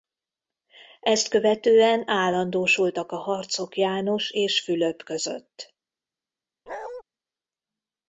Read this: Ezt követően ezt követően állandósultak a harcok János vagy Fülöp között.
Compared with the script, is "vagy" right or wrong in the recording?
wrong